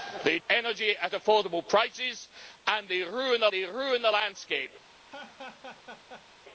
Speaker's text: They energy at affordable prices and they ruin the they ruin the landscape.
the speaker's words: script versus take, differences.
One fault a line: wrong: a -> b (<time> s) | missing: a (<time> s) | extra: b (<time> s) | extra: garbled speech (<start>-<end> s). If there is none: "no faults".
no faults